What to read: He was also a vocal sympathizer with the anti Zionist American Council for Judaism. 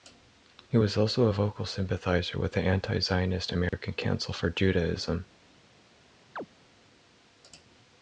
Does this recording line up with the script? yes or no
yes